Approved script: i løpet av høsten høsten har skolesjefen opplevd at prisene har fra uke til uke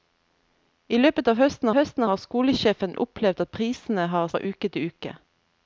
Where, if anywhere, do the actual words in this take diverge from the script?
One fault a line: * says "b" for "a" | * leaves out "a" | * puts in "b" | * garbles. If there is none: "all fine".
all fine